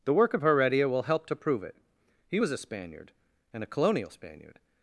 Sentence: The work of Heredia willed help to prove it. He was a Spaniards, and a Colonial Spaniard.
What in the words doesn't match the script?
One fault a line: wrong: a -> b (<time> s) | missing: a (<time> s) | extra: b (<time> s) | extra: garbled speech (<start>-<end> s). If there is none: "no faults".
wrong: willed -> will (0.9 s)
wrong: Spaniards -> Spaniard (2.6 s)